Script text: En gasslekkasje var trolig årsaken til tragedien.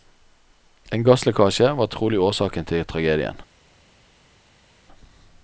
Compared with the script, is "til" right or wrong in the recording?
right